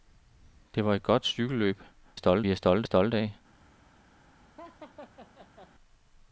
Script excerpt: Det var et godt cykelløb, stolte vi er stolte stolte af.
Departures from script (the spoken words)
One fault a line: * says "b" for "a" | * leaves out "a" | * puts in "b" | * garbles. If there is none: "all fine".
all fine